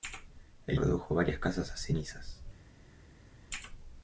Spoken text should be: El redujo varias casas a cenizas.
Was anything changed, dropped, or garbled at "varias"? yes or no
no